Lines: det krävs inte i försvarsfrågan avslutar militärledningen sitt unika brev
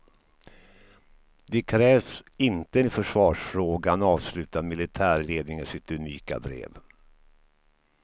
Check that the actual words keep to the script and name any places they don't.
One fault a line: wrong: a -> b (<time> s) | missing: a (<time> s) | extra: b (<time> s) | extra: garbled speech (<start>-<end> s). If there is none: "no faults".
no faults